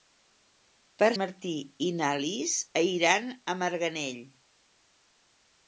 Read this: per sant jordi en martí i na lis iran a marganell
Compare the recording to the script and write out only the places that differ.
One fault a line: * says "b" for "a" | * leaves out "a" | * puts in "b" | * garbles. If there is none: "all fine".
* leaves out "sant jordi en"